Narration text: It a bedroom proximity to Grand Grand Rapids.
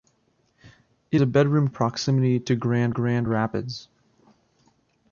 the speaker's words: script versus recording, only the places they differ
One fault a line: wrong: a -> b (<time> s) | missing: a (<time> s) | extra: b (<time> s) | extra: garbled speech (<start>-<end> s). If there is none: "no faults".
no faults